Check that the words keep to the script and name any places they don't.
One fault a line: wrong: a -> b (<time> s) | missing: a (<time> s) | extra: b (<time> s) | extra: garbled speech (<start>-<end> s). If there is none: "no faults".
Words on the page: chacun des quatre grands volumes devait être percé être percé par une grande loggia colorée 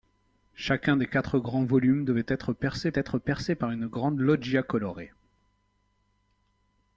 no faults